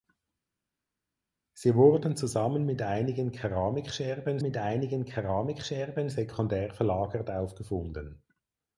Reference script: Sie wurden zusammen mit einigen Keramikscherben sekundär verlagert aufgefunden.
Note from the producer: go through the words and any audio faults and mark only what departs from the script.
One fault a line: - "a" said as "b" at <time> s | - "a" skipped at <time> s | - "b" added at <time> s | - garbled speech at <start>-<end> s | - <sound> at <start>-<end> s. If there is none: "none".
- "mit einigen Keramikscherben" added at 4.4 s